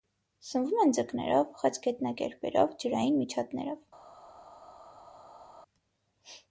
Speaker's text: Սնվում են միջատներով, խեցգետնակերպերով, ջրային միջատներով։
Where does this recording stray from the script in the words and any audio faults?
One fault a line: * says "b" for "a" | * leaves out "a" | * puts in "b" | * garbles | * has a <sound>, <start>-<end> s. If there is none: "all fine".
* says "ձկներով" for "միջատներով"